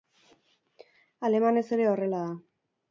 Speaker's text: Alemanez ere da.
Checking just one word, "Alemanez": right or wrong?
right